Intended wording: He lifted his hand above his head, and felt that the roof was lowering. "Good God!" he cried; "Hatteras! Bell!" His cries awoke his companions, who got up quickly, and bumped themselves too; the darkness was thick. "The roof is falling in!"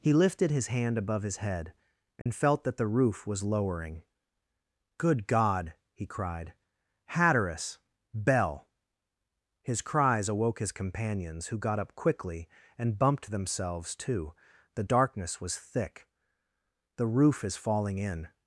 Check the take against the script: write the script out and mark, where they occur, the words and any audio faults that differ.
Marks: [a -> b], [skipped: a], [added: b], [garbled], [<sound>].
He lifted his hand above his head, and [dropout] felt that the roof was lowering. "Good God!" he cried; "Hatteras! Bell!" His cries awoke his companions, who got up quickly, and bumped themselves too; the darkness was thick. "The roof is falling in!"